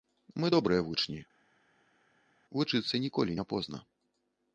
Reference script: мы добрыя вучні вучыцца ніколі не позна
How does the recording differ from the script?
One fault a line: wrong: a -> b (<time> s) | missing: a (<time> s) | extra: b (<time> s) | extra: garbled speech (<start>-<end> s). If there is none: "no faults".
no faults